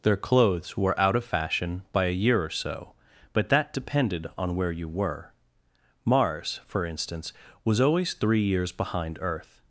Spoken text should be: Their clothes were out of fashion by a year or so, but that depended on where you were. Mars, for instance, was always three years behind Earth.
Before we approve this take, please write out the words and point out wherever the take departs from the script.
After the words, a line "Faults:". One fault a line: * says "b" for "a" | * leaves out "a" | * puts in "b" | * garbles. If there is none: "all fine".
Their clothes were out of fashion by a year or so, but that depended on where you were. Mars, for instance, was always three years behind Earth.
Faults:
all fine